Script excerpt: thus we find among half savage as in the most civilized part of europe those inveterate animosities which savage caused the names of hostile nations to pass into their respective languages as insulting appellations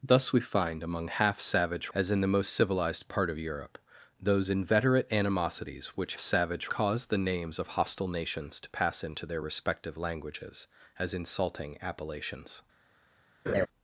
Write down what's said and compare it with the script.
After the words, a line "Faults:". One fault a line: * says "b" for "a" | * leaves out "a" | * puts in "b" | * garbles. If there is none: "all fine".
thus we find among half savage as in the most civilized part of europe those inveterate animosities which savage caused the names of hostile nations to pass into their respective languages as insulting appellations
Faults:
all fine